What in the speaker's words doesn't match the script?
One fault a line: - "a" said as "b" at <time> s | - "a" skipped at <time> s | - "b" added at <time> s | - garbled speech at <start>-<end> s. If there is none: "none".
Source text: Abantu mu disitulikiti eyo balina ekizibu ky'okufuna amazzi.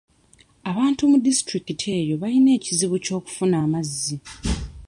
none